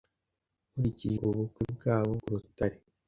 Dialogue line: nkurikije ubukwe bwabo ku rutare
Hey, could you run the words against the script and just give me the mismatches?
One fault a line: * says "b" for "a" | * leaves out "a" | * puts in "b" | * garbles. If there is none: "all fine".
all fine